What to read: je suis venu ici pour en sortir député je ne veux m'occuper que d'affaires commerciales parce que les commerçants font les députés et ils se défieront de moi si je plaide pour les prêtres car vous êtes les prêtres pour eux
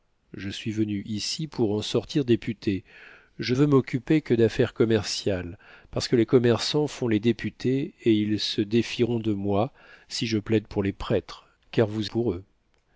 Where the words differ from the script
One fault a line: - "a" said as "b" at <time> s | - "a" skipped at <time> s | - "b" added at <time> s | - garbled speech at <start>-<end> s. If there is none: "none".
- "ne" skipped at 3.5 s
- "êtes les prêtres" skipped at 12.1 s